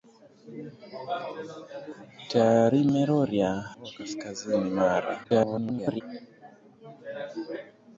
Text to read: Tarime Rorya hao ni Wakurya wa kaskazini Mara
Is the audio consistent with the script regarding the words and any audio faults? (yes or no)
no